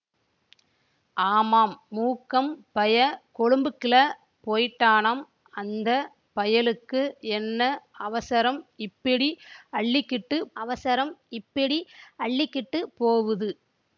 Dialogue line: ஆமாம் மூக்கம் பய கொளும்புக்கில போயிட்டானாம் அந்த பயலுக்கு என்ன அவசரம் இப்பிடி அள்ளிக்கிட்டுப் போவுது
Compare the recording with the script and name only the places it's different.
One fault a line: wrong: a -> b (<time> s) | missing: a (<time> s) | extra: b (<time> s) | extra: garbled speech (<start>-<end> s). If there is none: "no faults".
extra: அவசரம் இப்பிடி அள்ளிக்கிட்டுப் (10.6 s)